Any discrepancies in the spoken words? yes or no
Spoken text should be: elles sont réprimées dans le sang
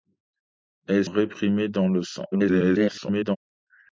yes